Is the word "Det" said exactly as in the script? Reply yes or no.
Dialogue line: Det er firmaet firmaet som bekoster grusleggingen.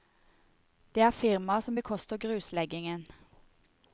yes